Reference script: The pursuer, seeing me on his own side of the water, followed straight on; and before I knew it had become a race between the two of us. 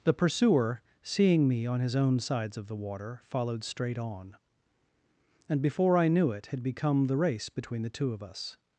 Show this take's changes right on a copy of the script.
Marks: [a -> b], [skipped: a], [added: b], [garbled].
The pursuer, seeing me on his own [side -> sides] of the water, followed straight on; and before I knew it had become [a -> the] race between the two of us.